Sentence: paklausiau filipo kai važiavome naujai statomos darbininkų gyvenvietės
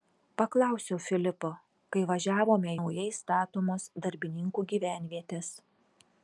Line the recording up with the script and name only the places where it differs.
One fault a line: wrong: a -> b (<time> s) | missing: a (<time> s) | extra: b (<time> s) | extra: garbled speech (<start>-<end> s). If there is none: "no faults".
no faults